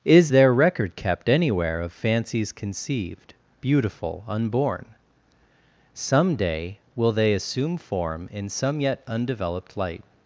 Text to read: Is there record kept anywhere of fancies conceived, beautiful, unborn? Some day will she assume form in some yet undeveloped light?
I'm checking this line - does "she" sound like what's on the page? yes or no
no